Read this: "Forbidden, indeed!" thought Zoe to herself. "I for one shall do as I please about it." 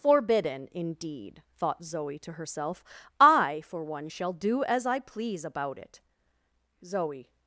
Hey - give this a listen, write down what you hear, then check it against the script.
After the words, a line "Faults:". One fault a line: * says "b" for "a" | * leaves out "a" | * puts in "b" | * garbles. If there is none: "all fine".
"Forbidden, indeed!" thought Zoe to herself. "I for one shall do as I please about it." "Zoe
Faults:
* puts in "Zoe"